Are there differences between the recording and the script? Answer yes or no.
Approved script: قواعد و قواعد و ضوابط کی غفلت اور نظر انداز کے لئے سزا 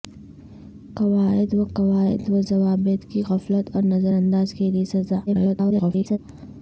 yes